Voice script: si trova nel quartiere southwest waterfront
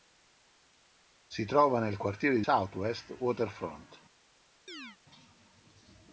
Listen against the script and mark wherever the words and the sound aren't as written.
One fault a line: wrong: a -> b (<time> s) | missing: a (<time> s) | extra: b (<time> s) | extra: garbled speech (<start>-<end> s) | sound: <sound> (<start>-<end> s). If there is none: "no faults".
sound: chirp (4.7-5.0 s)